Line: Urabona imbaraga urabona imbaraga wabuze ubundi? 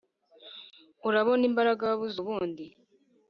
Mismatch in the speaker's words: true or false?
true